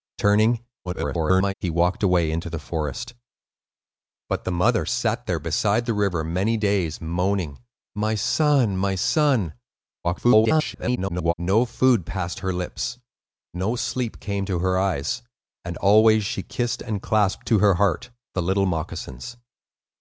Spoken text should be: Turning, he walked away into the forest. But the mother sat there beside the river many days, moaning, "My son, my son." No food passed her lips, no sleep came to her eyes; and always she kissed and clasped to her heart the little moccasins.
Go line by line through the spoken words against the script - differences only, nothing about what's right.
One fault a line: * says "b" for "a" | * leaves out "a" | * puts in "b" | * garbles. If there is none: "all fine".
* garbles
* garbles